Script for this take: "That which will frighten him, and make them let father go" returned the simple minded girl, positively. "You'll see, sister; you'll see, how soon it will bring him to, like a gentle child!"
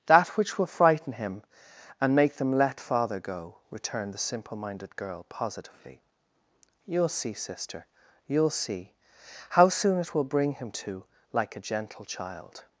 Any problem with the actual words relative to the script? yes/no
no